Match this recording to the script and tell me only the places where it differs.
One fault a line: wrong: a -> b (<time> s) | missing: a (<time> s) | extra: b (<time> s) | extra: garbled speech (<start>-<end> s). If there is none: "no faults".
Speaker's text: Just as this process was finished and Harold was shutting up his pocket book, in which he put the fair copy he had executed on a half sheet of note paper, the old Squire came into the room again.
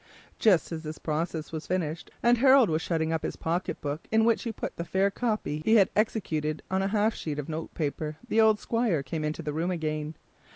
no faults